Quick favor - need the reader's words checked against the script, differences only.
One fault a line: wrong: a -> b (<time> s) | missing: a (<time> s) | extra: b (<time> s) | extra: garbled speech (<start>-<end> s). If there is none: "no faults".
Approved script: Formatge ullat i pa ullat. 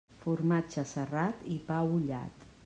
wrong: ullat -> serrat (0.9 s)